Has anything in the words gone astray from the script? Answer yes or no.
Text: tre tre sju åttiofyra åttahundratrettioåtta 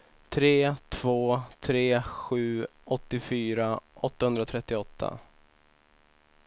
yes